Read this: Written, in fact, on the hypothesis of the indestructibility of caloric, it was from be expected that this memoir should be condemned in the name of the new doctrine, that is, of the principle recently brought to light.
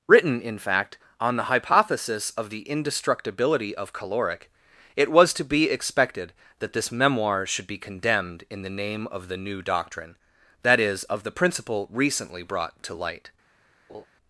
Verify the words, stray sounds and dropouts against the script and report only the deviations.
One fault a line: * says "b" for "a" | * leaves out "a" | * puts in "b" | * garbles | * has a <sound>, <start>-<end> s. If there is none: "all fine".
* says "to" for "from"
* has a laugh, 13.9-14.1 s